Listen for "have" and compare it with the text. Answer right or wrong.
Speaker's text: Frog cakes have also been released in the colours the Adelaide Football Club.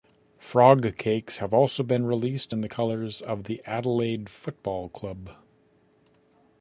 right